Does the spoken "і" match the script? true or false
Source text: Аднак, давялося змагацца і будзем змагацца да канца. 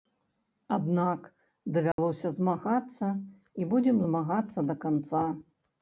true